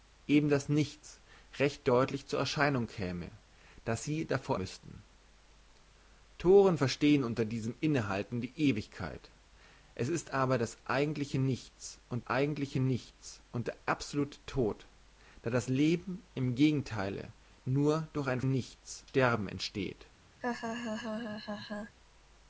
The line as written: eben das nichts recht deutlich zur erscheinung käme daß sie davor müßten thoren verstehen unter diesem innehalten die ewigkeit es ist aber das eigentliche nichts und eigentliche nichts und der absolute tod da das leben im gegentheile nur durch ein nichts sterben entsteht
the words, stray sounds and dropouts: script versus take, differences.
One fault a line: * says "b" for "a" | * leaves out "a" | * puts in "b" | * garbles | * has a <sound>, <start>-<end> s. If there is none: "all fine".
* has a laugh, 20.4-22.0 s